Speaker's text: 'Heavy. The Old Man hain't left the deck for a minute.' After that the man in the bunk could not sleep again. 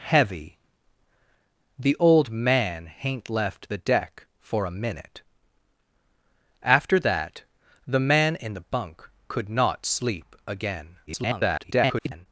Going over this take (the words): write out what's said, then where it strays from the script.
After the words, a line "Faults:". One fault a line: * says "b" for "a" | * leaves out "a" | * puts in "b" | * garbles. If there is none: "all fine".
'Heavy. The Old Man hain't left the deck for a minute.' After that the man in the bunk could not sleep again. [garbled]
Faults:
* garbles